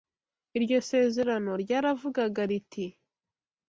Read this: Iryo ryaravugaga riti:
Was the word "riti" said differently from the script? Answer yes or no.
no